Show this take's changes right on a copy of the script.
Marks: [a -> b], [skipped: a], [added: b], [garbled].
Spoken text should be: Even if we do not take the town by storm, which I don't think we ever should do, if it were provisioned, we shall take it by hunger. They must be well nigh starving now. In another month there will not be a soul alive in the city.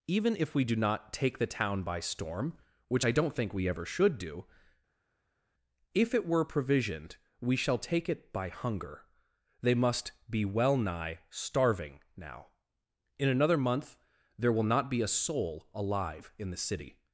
Even if we do not take the town by storm, which I don't think we ever should do, if it were provisioned, we shall take it by hunger. They must be well nigh starving now. In another month there will not be a soul alive in the city.